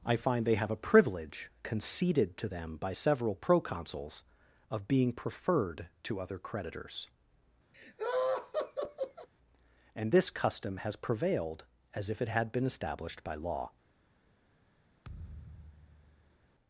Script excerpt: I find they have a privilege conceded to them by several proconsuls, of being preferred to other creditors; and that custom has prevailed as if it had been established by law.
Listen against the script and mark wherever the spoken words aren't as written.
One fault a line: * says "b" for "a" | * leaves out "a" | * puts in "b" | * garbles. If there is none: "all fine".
* says "this" for "that"